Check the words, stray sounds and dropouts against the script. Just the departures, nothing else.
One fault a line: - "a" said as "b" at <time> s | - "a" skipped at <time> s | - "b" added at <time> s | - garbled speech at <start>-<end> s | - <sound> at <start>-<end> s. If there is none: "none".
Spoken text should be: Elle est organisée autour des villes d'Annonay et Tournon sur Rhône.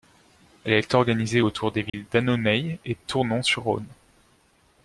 - dropout at 1.9-1.9 s